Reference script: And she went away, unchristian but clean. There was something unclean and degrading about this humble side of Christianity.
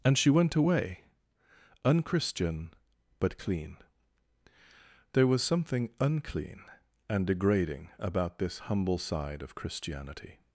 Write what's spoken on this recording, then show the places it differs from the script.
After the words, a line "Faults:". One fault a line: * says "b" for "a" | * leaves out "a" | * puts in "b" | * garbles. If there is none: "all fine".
And she went away, unchristian but clean. There was something unclean and degrading about this humble side of Christianity.
Faults:
all fine